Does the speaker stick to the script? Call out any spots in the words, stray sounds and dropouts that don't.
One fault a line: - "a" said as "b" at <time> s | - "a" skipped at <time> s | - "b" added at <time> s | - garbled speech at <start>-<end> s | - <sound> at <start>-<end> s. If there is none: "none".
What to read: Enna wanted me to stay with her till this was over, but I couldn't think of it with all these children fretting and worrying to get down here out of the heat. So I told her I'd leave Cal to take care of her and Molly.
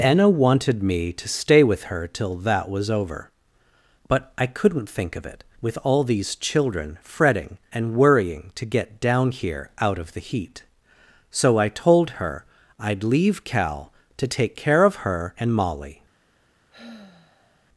- "this" said as "that" at 2.4 s
- sigh at 16.7-17.7 s